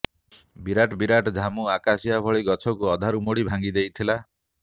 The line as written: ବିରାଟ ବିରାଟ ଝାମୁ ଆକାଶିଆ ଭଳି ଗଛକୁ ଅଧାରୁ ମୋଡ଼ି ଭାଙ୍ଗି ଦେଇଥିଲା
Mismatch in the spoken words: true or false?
false